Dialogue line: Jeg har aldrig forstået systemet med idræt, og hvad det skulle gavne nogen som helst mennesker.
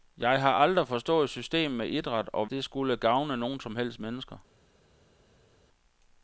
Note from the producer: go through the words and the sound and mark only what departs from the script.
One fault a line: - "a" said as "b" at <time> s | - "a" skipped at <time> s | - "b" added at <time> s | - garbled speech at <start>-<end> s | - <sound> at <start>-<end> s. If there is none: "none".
- "hvad" skipped at 2.5 s